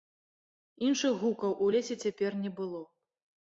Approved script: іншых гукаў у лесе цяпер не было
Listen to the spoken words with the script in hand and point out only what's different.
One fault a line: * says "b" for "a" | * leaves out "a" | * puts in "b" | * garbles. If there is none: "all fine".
all fine